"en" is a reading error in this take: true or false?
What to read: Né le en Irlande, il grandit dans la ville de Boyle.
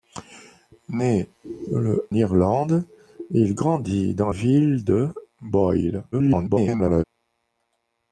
true